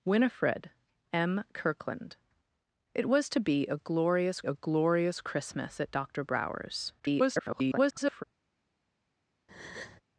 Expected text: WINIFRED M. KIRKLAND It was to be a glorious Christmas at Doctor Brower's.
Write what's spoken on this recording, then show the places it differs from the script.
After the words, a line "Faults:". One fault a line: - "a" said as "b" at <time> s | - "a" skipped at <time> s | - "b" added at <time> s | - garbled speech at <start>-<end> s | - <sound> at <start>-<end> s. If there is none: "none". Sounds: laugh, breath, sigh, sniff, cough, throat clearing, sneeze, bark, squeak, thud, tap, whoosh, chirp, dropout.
WINIFRED M. KIRKLAND It was to be a glorious a glorious Christmas at Doctor Brower's. [garbled]
Faults:
- "a glorious" added at 4.4 s
- garbled speech at 7.0-8.2 s
- breath at 9.5-10.0 s